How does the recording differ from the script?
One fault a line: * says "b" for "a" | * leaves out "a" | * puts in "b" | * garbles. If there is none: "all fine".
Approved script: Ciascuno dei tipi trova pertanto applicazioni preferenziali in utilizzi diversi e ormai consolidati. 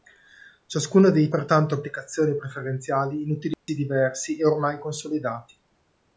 * leaves out "tipi trova"